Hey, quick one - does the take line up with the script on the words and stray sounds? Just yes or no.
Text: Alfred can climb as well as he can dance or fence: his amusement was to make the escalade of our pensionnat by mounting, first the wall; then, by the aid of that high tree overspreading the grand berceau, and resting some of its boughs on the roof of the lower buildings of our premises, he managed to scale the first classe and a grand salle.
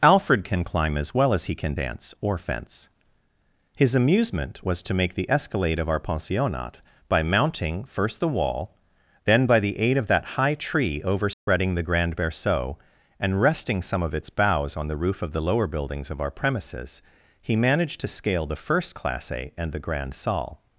no